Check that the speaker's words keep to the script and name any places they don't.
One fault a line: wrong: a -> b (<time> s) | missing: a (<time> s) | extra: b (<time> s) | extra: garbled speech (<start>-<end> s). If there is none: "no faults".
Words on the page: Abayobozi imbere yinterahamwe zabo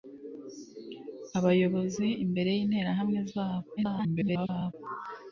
extra: garbled speech (3.8-4.7 s)